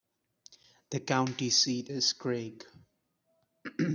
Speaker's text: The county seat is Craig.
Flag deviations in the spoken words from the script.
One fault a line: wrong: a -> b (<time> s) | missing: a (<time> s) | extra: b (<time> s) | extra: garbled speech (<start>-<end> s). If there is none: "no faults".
no faults